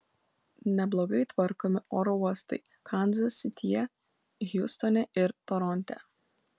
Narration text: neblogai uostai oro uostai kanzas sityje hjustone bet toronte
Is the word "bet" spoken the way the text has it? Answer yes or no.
no